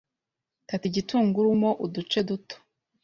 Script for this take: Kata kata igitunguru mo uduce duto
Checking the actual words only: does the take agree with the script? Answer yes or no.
no